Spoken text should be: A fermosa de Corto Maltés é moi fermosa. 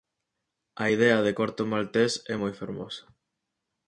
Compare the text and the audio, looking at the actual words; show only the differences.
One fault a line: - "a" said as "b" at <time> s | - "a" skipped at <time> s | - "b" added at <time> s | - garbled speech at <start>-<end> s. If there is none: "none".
- "fermosa" said as "idea" at 0.9 s